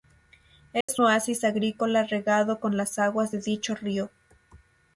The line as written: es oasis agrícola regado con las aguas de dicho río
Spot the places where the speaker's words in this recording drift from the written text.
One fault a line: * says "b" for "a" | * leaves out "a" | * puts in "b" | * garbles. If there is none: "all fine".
all fine